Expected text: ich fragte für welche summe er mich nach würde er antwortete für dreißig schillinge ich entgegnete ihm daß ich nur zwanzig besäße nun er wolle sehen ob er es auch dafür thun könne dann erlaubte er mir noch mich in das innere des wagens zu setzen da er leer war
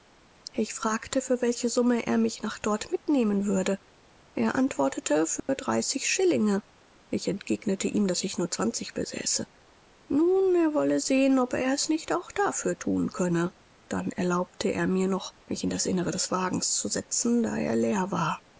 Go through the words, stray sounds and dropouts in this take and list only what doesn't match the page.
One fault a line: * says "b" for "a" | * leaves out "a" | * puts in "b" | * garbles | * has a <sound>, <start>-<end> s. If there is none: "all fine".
* puts in "dort mitnehmen"
* has a dropout, 5.4-5.5 s
* puts in "nicht"